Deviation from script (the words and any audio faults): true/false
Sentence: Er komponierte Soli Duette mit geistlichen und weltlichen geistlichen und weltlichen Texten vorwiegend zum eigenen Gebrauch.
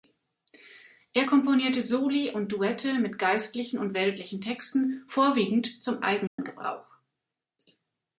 true